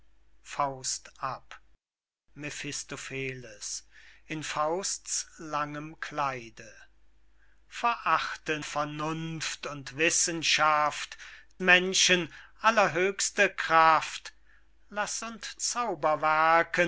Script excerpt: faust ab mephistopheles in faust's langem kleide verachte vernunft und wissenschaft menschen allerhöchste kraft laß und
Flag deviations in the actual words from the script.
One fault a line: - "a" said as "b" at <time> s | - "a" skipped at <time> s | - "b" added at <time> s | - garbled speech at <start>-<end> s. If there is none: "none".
none